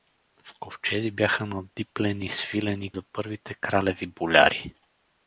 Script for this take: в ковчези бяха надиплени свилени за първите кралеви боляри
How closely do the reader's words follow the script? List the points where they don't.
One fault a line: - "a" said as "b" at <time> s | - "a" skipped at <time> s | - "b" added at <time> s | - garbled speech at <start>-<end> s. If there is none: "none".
none